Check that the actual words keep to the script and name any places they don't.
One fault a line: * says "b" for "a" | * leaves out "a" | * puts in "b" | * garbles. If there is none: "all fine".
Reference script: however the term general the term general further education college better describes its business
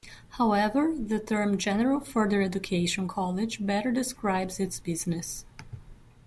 * leaves out "the term general"